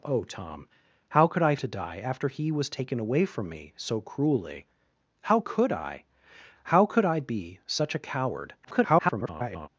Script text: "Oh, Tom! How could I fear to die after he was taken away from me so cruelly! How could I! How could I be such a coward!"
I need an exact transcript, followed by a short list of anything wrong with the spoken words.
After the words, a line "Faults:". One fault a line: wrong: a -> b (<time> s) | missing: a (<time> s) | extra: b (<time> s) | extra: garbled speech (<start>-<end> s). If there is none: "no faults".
"Oh, Tom! How could I to die after he was taken away from me so cruelly! How could I! How could I be such a coward!" [garbled]
Faults:
missing: fear (1.6 s)
extra: garbled speech (8.6-9.7 s)